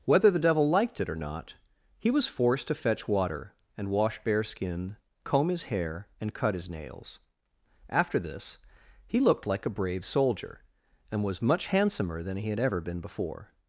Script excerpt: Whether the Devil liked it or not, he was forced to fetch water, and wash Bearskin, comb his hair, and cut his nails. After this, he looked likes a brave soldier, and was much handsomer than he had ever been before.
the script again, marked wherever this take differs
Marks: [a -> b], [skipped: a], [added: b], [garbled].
Whether the Devil liked it or not, he was forced to fetch water, and wash Bearskin, comb his hair, and cut his nails. After this, he looked [likes -> like] a brave soldier, and was much handsomer than he had ever been before.